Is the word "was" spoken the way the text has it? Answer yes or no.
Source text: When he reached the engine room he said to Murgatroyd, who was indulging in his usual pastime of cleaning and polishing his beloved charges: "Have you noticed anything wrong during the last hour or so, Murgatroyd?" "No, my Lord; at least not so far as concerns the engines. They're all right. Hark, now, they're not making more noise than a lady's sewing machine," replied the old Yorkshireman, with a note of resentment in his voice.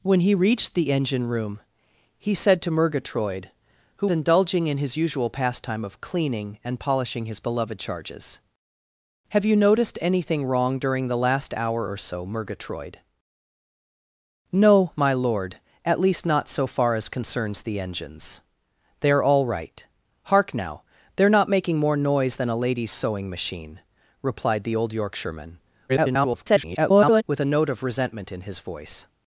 no